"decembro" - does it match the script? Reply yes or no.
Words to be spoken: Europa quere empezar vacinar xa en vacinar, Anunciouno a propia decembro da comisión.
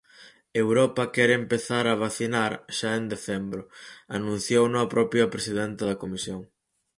no